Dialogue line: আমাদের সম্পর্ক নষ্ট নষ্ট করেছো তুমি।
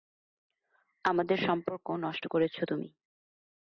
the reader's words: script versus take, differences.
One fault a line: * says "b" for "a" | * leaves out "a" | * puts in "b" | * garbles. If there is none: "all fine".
* leaves out "নষ্ট"